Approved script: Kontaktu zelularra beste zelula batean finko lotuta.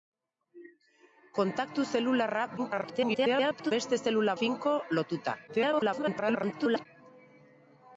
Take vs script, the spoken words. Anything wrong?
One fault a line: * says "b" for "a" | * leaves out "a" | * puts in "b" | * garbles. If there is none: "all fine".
* garbles
* leaves out "batean"
* garbles